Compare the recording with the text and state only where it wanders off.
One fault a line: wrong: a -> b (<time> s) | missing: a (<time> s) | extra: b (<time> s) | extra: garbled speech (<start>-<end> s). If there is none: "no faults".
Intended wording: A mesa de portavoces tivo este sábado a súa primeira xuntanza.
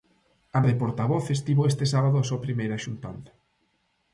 missing: mesa (0.6 s)